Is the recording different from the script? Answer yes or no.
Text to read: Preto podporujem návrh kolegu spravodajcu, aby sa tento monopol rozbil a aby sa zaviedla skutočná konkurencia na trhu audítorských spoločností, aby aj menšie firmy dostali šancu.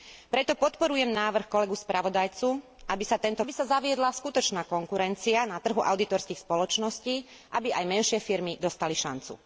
yes